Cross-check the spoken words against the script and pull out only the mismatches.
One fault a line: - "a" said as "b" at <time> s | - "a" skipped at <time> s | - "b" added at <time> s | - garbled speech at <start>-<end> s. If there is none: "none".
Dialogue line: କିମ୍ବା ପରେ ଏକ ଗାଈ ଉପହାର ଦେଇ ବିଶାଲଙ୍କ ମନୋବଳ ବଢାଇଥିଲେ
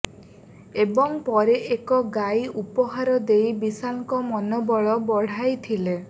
- "କିମ୍ବା" said as "ଏବଂ" at 0.8 s